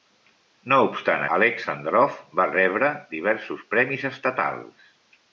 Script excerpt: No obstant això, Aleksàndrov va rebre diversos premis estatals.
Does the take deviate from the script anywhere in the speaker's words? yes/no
yes